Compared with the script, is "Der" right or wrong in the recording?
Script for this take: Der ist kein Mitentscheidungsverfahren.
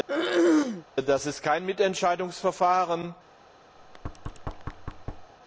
wrong